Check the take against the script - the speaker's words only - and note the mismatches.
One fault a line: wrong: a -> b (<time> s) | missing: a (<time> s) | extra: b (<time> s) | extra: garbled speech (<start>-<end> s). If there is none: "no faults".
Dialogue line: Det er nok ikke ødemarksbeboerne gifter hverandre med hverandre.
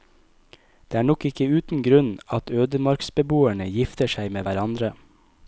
extra: uten grunn at (1.6 s)
wrong: hverandre -> seg (4.2 s)